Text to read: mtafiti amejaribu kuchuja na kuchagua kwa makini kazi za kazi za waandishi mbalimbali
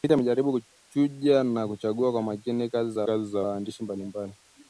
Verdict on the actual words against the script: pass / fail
pass